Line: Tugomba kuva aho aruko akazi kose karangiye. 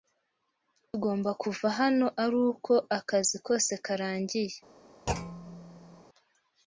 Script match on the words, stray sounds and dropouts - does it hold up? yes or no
no